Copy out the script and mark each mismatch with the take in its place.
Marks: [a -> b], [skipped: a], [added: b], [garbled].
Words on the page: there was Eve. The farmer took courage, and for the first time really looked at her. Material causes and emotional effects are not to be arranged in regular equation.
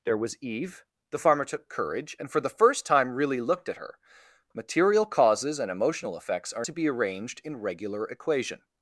there was Eve. The farmer took courage, and for the first time really looked at her. Material causes and emotional effects are [skipped: not] to be arranged in regular equation.